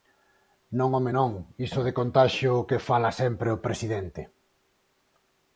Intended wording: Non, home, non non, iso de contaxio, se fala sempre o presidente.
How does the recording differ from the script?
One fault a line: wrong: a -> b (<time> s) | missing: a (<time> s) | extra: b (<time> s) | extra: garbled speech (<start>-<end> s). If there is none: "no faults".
missing: non (1.3 s)
wrong: se -> que (2.7 s)